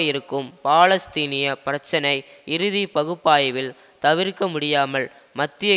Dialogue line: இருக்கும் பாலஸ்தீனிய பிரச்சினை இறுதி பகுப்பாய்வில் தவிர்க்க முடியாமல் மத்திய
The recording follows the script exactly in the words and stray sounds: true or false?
true